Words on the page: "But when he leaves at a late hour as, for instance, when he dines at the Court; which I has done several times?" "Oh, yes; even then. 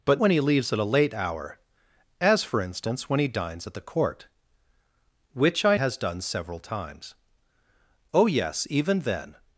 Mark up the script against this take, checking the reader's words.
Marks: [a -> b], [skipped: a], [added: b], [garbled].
"But when he leaves at a late hour as, for instance, when he dines at the Court; which I has done several times?" "Oh, yes; even then.